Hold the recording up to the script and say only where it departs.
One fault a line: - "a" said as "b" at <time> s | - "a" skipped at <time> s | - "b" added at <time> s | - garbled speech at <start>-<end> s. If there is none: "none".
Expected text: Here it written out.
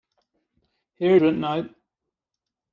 none